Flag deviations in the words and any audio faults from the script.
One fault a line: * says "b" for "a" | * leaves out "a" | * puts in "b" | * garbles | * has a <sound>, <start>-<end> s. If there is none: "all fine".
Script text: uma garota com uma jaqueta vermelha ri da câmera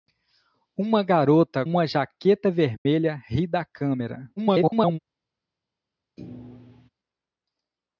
* leaves out "com"
* has a dropout, 2.8-2.9 s
* garbles
* has a thud, 6.2-6.9 s